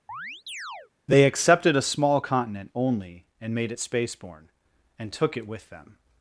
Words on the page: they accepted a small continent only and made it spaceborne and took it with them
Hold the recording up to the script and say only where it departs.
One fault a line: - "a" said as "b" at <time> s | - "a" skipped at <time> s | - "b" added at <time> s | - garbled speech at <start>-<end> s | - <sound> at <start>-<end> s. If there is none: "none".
- chirp at 0.1-0.9 s